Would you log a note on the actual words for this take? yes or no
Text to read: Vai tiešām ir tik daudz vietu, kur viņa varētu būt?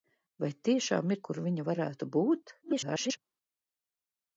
yes